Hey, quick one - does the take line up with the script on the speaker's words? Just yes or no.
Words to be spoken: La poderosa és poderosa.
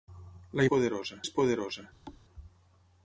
yes